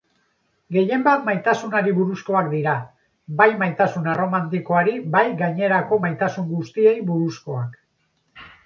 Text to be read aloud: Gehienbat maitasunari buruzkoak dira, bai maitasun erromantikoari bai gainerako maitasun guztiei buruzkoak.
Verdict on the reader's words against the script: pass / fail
pass